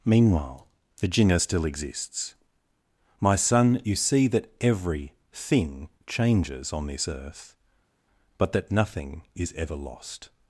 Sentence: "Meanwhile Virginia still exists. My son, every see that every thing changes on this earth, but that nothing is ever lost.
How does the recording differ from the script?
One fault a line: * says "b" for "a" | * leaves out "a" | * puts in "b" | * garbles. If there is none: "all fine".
* says "you" for "every"